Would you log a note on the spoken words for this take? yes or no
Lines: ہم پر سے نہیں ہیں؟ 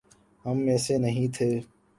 yes